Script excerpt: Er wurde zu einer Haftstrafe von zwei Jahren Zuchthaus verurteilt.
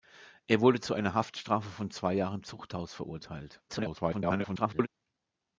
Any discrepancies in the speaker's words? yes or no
yes